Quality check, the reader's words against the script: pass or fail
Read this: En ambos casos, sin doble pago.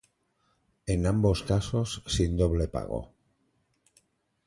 pass